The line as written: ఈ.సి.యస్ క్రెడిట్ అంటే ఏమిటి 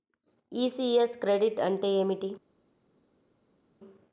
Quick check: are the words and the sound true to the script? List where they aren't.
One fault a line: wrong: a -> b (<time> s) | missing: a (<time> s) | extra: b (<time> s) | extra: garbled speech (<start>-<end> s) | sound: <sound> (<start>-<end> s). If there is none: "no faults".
no faults